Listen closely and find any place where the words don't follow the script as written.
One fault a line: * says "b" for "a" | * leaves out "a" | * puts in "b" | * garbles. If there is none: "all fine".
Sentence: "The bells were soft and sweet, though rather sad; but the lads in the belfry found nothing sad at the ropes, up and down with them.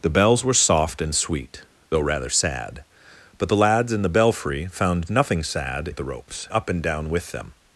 all fine